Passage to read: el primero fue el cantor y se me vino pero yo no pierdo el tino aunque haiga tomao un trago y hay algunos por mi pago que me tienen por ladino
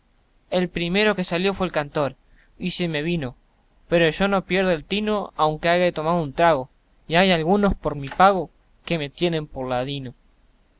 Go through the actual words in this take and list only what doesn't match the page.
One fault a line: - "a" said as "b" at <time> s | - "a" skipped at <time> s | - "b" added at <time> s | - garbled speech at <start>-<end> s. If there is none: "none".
- "que salió" added at 1.1 s